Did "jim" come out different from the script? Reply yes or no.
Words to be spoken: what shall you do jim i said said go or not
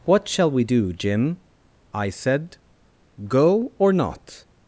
no